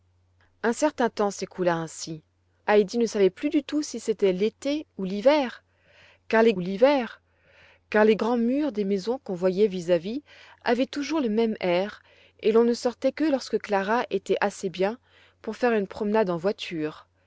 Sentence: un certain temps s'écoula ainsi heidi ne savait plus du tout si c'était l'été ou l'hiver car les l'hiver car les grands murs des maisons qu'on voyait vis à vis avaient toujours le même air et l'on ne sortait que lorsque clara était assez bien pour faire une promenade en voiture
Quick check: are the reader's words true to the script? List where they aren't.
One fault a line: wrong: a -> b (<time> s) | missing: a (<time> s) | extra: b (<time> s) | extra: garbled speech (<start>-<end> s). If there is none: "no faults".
no faults